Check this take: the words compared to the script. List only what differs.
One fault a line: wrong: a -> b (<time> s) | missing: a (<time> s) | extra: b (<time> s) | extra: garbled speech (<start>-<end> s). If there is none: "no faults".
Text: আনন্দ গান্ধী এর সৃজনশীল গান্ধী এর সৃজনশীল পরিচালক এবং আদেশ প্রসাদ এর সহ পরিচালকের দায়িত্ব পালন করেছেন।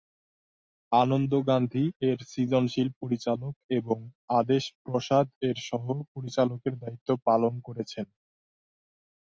missing: গান্ধী এর সৃজনশীল (2.9 s)